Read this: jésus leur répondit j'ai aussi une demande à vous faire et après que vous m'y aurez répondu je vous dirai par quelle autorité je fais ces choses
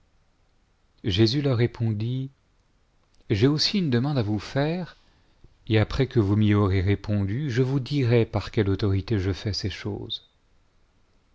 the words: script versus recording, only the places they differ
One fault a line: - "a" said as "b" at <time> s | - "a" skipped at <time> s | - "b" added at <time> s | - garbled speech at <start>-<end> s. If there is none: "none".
none